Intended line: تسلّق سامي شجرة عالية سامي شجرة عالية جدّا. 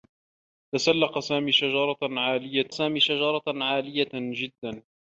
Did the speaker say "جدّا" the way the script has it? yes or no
yes